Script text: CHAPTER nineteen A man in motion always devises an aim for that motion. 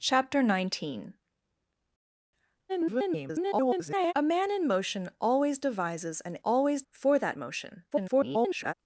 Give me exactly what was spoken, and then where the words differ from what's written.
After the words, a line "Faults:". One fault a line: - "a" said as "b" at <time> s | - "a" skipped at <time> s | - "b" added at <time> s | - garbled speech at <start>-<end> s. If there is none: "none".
CHAPTER nineteen [garbled] A man in motion always devises an always for that motion. [garbled]
Faults:
- garbled speech at 2.7-4.1 s
- "aim" said as "always" at 6.4 s
- garbled speech at 7.9-8.7 s